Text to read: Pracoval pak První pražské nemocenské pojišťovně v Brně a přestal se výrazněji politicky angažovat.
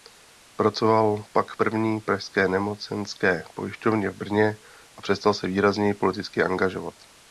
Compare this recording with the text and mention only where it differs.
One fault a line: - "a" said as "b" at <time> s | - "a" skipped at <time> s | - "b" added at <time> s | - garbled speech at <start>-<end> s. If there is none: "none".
none